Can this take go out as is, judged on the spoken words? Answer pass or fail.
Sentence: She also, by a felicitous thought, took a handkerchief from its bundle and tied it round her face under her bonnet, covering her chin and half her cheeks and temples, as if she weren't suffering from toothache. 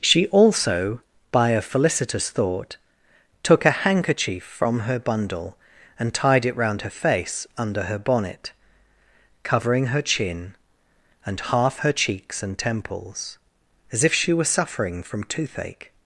fail